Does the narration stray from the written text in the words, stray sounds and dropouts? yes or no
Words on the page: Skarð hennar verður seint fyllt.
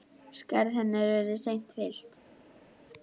no